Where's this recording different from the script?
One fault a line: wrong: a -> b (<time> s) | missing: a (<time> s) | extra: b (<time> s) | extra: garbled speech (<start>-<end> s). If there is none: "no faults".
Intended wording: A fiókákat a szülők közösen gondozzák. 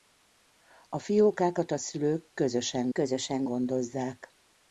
extra: közösen (2.9 s)